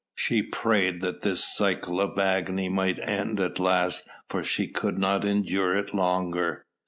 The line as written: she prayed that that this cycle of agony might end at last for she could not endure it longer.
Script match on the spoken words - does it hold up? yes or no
no